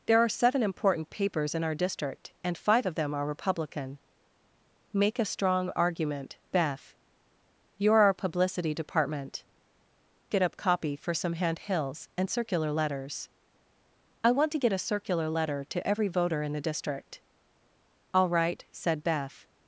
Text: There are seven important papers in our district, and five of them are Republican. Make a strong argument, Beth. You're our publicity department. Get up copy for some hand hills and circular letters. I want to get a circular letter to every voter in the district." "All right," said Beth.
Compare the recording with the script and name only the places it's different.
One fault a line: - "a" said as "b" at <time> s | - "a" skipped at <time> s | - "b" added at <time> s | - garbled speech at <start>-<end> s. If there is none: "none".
none